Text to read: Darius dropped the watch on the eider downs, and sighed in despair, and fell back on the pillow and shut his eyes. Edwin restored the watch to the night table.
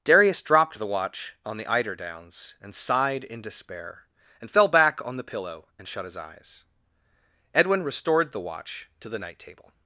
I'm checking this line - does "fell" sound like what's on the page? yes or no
yes